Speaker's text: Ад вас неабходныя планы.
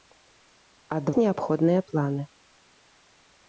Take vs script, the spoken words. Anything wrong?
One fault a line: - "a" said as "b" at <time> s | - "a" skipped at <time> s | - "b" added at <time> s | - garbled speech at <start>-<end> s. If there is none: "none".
- "вас" skipped at 1.1 s